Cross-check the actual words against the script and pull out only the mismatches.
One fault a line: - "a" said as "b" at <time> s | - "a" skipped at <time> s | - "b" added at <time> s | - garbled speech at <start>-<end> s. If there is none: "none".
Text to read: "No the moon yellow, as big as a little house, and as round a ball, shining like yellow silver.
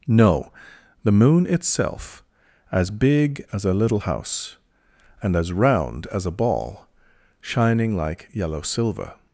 - "yellow" said as "itself" at 1.5 s
- "as" added at 6.1 s